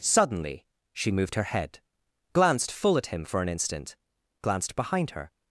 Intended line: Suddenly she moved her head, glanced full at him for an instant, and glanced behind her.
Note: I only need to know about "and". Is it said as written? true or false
false